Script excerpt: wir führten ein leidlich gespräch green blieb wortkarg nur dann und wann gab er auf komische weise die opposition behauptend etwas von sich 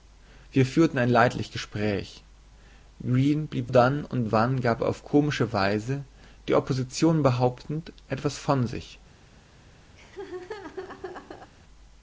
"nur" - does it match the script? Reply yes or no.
no